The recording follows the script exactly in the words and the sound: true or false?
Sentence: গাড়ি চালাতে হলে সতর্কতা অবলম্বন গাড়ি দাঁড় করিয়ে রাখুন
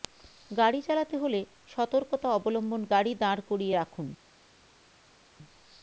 true